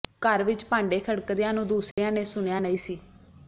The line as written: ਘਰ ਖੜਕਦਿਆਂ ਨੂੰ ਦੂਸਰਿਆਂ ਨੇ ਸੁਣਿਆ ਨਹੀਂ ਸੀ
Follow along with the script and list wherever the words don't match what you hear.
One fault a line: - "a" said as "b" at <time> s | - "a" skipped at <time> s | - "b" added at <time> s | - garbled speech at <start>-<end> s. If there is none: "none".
- "ਵਿੱਚ ਭਾਂਡੇ" added at 0.4 s